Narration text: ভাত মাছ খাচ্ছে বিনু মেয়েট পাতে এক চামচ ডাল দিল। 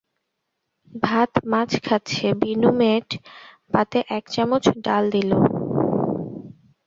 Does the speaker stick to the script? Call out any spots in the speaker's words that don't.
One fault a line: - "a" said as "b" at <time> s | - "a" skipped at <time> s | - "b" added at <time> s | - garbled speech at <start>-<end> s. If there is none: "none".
none